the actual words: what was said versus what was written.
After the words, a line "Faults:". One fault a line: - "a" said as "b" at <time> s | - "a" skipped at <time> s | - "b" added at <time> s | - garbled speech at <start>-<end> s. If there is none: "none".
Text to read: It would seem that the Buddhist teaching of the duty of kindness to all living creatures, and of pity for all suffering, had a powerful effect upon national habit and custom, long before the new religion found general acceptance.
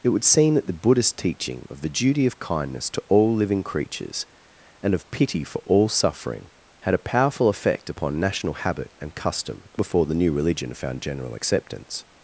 It would seem that the Buddhist teaching of the duty of kindness to all living creatures, and of pity for all suffering, had a powerful effect upon national habit and custom, before the new religion found general acceptance.
Faults:
- "long" skipped at 9.7 s